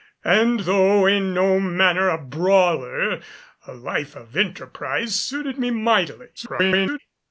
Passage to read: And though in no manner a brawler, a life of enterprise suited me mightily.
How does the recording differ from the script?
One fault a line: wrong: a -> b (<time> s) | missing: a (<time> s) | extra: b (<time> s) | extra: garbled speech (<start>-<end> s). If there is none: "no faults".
extra: garbled speech (6.4-7.0 s)